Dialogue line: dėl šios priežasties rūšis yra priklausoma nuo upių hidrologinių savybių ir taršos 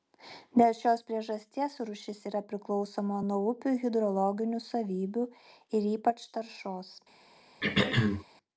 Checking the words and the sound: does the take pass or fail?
fail